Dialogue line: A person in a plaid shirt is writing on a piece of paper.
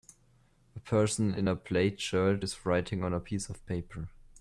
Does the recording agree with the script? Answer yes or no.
yes